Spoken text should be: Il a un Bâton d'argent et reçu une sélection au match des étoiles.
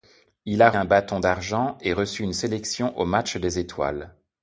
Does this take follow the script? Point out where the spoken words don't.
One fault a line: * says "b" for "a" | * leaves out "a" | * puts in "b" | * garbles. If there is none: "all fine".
all fine